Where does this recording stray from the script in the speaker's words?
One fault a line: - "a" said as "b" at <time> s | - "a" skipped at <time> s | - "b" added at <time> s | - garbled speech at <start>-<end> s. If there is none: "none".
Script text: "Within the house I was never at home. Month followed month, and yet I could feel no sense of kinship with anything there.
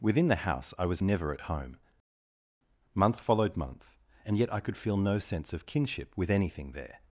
none